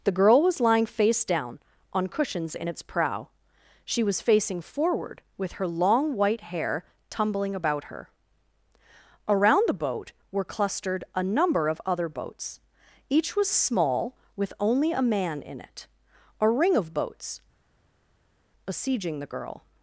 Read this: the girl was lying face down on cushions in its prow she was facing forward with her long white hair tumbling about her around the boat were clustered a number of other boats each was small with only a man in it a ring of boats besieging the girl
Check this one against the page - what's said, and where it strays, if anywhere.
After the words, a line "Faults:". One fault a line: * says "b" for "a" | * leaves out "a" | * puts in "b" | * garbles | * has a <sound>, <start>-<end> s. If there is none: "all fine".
the girl was lying face down on cushions in its prow she was facing forward with her long white hair tumbling about her around the boat were clustered a number of other boats each was small with only a man in it a ring of boats besieging the girl
Faults:
all fine